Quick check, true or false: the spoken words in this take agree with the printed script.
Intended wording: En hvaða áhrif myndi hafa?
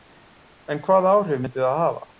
false